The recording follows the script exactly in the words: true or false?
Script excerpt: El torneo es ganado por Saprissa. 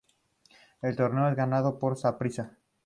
true